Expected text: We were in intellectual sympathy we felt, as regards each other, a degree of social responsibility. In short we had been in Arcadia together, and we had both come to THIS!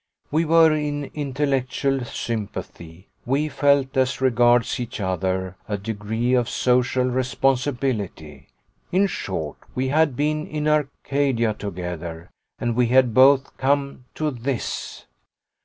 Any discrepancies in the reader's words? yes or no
no